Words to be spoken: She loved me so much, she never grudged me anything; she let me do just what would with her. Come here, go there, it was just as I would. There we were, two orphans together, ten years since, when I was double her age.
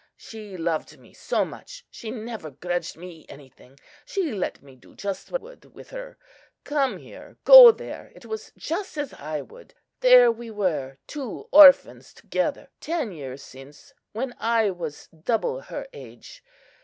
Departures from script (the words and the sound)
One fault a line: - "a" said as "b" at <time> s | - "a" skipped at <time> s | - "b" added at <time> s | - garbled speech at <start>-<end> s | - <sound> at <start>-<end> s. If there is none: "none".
none